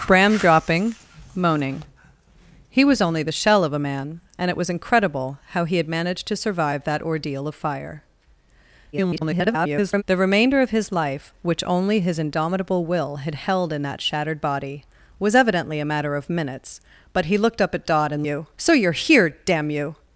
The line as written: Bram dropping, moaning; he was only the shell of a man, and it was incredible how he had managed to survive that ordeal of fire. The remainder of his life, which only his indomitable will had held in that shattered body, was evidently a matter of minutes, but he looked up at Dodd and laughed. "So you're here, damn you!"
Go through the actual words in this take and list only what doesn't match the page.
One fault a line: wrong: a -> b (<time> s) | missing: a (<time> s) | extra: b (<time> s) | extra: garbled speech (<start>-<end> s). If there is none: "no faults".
extra: garbled speech (8.9-10.0 s)
wrong: laughed -> you (18.2 s)